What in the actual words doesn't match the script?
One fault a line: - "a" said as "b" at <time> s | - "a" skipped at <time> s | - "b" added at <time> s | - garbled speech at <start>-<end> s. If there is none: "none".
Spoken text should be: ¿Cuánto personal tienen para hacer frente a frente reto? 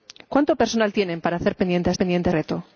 none